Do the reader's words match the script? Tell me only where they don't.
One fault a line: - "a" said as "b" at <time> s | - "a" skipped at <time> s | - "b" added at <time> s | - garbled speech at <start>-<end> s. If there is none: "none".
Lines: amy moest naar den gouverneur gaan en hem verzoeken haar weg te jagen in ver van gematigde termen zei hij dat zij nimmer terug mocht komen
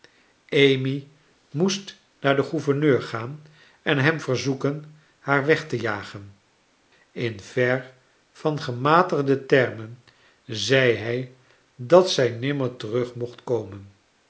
none